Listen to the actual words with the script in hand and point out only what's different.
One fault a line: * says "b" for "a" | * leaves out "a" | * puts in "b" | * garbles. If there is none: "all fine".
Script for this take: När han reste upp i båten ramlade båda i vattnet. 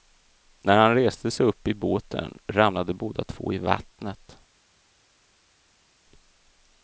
* puts in "sig"
* puts in "två"